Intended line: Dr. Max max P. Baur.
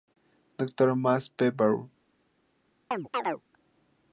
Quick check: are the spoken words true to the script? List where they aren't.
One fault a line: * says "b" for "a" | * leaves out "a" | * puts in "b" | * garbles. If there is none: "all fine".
* leaves out "max"